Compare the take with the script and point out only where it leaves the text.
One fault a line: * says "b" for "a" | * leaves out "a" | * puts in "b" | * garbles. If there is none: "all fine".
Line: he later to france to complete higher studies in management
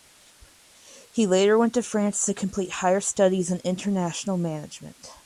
* puts in "went"
* puts in "international"